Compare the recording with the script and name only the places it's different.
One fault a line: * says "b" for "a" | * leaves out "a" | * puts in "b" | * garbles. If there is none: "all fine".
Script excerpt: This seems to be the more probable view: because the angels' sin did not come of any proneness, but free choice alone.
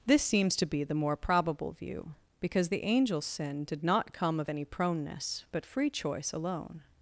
all fine